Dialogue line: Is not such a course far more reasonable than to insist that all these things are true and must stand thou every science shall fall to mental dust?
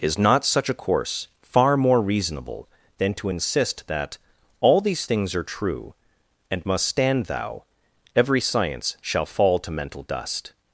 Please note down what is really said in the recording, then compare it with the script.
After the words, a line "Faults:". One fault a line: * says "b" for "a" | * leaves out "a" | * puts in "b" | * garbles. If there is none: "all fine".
Is not such a course far more reasonable than to insist that all these things are true and must stand thou every science shall fall to mental dust?
Faults:
all fine